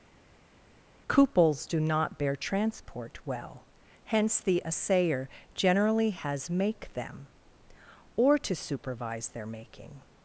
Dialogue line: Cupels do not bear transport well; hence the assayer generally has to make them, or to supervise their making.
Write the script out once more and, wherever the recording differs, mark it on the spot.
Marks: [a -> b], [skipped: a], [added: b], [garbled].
Cupels do not bear transport well; hence the assayer generally has [skipped: to] make them, or to supervise their making.